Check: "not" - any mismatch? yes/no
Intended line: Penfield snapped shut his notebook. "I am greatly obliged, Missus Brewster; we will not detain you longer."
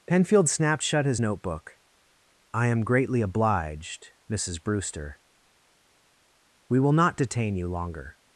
no